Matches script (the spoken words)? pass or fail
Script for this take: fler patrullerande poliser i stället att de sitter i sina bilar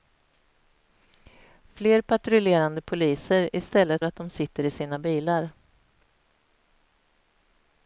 pass